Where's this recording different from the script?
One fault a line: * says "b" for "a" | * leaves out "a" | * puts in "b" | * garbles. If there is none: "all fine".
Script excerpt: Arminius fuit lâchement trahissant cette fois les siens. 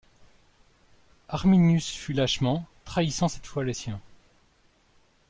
all fine